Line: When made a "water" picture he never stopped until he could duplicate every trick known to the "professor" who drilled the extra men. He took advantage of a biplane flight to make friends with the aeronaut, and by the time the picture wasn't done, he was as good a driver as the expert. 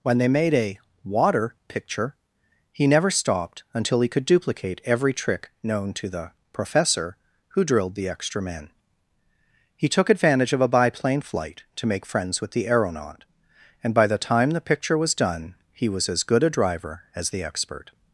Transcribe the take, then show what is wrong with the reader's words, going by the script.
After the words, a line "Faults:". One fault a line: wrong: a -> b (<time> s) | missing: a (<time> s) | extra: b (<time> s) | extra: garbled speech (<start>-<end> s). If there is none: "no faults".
When they made a "water" picture he never stopped until he could duplicate every trick known to the "professor" who drilled the extra men. He took advantage of a biplane flight to make friends with the aeronaut, and by the time the picture was done, he was as good a driver as the expert.
Faults:
extra: they (0.2 s)
wrong: wasn't -> was (15.0 s)